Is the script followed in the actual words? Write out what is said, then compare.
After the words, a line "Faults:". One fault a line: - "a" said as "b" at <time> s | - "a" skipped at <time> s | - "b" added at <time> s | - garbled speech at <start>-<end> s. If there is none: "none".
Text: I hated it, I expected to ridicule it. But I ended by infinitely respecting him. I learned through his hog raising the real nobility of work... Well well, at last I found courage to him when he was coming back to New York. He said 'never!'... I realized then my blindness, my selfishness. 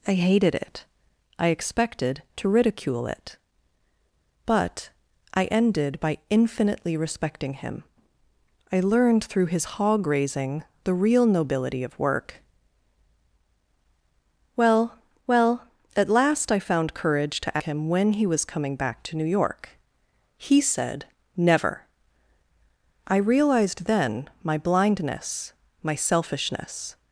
I hated it, I expected to ridicule it. But I ended by infinitely respecting him. I learned through his hog raising the real nobility of work... Well well, at last I found courage to him when he was coming back to New York. He said 'never!'... I realized then my blindness, my selfishness.
Faults:
none